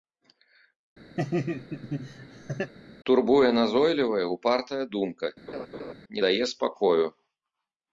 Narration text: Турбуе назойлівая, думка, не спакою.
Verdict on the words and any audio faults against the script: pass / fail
fail